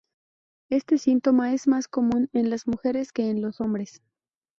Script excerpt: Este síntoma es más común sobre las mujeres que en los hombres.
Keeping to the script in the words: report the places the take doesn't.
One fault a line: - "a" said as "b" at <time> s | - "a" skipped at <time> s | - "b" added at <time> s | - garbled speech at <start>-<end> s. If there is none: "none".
- "sobre" said as "en" at 2.3 s